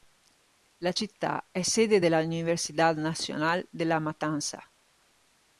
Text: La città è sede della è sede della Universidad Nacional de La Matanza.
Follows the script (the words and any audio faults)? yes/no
no